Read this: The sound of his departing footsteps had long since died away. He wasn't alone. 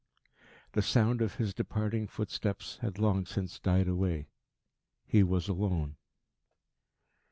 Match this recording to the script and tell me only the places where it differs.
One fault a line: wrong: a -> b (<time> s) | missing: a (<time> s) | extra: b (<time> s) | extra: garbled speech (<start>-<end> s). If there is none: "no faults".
wrong: wasn't -> was (5.2 s)